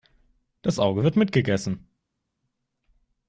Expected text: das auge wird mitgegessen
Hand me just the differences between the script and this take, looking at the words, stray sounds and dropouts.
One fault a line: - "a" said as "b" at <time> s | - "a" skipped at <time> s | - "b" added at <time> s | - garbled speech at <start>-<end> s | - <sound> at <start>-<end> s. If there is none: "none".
none